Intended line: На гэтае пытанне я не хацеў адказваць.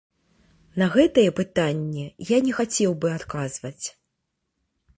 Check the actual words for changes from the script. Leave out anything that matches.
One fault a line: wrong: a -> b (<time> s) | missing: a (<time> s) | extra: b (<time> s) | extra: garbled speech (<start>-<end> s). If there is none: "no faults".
extra: бы (3.1 s)